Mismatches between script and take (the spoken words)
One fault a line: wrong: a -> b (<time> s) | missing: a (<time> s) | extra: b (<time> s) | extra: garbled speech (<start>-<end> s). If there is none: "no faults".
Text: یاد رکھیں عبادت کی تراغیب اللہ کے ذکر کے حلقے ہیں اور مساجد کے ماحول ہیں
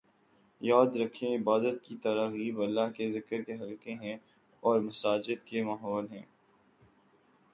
no faults